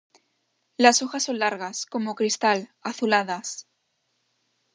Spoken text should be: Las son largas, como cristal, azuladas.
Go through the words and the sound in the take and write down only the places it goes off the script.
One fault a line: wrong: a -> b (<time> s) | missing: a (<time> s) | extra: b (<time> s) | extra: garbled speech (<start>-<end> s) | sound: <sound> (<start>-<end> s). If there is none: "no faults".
extra: hojas (1.0 s)